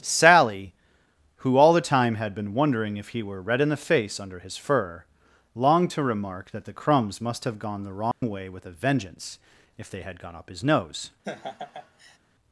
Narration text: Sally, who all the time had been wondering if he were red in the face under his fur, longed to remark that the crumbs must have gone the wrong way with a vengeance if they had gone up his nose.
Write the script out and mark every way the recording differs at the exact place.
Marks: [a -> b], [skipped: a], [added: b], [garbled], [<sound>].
Sally, who all the time had been wondering if he were red in the face under his fur, longed to remark that the crumbs must have gone the wrong [dropout] way with a vengeance if they had gone up his nose. [laugh]